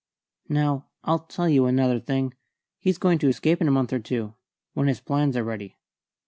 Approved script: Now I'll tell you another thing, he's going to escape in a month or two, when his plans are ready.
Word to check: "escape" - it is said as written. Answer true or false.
true